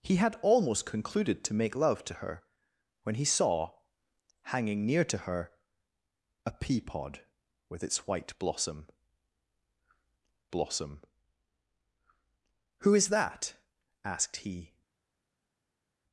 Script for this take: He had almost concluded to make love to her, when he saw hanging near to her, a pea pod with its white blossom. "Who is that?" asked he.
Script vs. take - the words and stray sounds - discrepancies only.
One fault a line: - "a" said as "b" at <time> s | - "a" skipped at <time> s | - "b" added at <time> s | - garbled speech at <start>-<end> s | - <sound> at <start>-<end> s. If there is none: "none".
- "blossom" added at 10.5 s